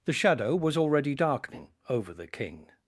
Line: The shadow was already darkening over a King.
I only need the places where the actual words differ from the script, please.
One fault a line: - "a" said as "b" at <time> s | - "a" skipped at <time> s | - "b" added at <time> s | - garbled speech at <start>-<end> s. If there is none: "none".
- "a" said as "the" at 2.1 s